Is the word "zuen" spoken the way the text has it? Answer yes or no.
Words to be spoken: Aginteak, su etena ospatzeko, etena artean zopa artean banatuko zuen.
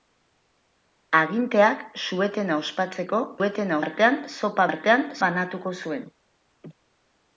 yes